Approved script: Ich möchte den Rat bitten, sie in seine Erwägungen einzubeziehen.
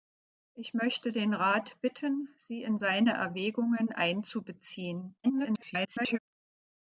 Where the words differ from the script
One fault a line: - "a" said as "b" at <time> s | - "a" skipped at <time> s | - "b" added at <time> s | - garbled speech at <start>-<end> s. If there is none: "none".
- garbled speech at 5.2-6.2 s